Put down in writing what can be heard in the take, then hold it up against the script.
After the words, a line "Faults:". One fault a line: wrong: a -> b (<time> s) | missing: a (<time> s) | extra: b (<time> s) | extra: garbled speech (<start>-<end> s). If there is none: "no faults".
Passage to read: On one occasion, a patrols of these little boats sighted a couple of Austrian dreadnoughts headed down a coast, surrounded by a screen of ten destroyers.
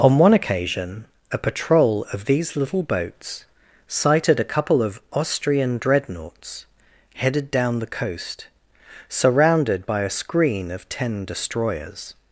On one occasion, a patrol of these little boats sighted a couple of Austrian dreadnoughts headed down the coast, surrounded by a screen of ten destroyers.
Faults:
wrong: patrols -> patrol (1.4 s)
wrong: a -> the (7.8 s)